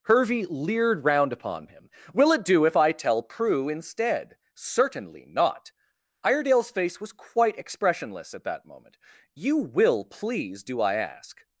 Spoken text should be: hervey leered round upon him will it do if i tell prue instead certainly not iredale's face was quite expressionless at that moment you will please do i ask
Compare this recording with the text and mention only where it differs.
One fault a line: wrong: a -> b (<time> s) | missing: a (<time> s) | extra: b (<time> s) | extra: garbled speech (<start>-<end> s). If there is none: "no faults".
no faults